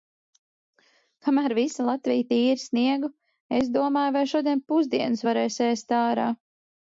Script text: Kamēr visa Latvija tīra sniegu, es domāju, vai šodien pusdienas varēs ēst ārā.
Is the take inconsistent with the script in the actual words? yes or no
no